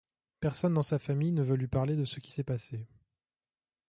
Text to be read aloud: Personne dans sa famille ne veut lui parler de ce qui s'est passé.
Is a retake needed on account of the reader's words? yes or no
no